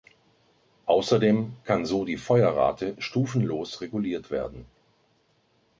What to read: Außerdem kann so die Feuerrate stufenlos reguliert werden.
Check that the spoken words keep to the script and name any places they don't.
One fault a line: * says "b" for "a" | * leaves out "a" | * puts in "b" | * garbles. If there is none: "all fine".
all fine